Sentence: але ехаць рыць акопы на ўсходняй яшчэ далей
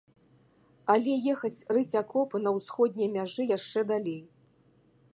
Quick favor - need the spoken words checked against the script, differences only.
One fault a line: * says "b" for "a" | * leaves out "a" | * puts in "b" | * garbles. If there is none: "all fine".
* puts in "мяжы"